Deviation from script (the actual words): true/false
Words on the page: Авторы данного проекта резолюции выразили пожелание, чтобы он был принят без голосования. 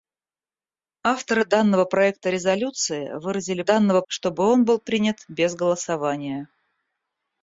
true